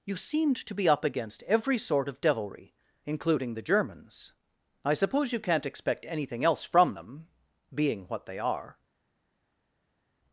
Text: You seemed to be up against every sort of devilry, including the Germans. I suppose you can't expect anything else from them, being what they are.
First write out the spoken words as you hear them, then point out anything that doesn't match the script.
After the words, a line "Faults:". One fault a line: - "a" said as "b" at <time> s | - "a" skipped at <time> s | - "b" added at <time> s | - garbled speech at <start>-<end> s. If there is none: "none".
You seemed to be up against every sort of devilry, including the Germans. I suppose you can't expect anything else from them, being what they are.
Faults:
none